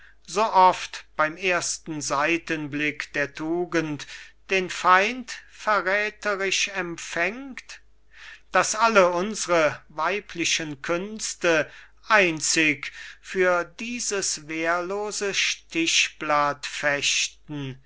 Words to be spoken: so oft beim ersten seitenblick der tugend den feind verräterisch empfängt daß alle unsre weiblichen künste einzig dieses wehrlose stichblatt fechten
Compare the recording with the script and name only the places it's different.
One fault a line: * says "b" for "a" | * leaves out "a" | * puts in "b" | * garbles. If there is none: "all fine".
* puts in "für"